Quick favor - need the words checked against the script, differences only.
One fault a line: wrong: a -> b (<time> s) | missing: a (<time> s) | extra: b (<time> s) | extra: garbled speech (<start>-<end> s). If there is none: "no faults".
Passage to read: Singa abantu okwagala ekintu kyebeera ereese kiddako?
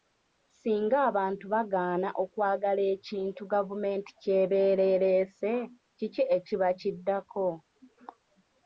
extra: bagaana (1.5 s)
extra: gavumenti (3.5 s)
extra: kiki ekiba (6.0 s)